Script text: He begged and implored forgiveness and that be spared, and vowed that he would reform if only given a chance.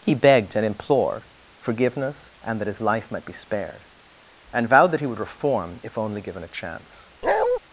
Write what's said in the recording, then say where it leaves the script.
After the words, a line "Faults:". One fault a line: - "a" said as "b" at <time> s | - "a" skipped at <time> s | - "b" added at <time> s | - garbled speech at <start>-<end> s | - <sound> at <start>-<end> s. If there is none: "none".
He begged and implored forgiveness and that his life might be spared, and vowed that he would reform if only given a chance.
Faults:
- "his life might" added at 2.7 s
- bark at 7.2-7.6 s